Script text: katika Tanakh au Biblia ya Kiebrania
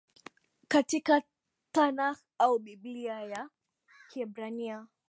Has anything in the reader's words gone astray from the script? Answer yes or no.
no